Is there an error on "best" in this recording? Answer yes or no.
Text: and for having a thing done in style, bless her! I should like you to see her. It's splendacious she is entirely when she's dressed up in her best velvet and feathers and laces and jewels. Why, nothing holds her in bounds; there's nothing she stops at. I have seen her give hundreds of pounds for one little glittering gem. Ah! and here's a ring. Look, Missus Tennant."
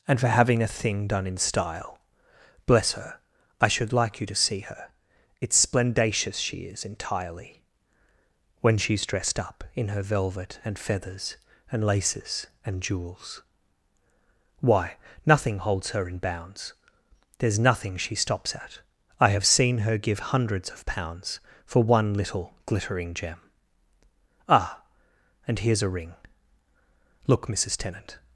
yes